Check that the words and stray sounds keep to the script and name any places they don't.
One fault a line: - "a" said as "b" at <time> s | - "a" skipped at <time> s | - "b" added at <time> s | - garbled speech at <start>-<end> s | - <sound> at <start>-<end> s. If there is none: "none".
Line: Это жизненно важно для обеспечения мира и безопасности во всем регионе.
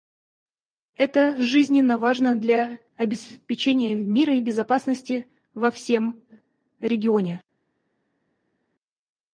none